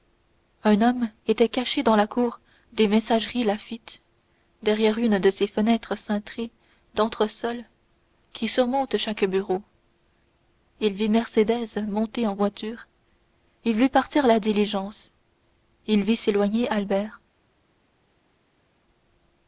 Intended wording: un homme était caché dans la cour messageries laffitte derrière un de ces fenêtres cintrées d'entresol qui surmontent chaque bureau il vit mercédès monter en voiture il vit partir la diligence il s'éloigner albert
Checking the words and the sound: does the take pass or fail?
fail